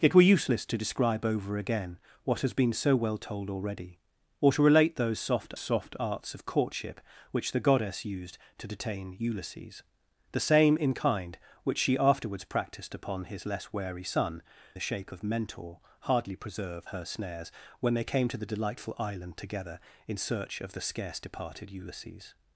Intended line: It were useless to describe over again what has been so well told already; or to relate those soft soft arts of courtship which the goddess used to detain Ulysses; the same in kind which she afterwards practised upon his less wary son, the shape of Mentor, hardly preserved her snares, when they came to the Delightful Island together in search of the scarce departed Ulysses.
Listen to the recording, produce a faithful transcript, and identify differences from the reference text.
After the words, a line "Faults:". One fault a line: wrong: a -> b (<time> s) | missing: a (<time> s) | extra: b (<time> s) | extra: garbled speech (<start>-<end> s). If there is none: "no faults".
It were useless to describe over again what has been so well told already; or to relate those soft soft arts of courtship which the goddess used to detain Ulysses; the same in kind which she afterwards practised upon his less wary son, the shape of Mentor, hardly preserved her snares, when they came to the Delightful Island together in search of the scarce departed Ulysses.
Faults:
no faults